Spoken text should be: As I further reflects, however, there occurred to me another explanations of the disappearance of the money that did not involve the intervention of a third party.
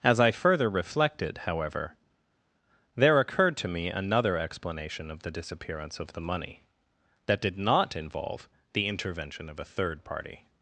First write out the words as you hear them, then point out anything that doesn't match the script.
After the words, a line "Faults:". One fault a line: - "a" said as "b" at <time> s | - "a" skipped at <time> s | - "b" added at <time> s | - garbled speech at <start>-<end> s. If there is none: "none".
As I further reflected, however, there occurred to me another explanation of the disappearance of the money that did not involve the intervention of a third party.
Faults:
- "reflects" said as "reflected" at 0.7 s
- "explanations" said as "explanation" at 4.4 s